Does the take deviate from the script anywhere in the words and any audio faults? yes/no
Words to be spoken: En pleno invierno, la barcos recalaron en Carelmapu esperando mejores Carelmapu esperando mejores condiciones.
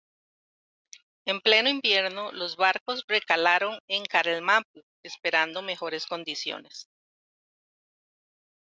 yes